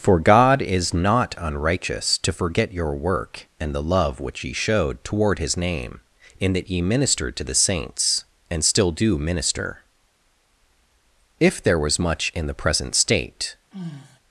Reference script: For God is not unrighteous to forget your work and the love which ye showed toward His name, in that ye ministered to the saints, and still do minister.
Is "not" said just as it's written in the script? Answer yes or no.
yes